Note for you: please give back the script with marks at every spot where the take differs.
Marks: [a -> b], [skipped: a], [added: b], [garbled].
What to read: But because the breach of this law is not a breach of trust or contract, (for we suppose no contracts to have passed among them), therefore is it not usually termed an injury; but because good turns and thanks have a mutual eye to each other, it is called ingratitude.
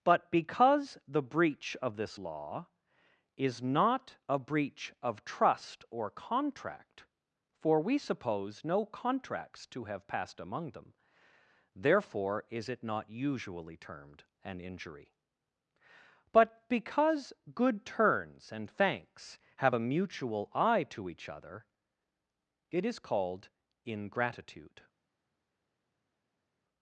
But because the breach of this law is not a breach of trust or contract, (for we suppose no contracts to have passed among them), therefore is it not usually termed an injury; but because good turns and thanks have a mutual eye to each other, it is called ingratitude.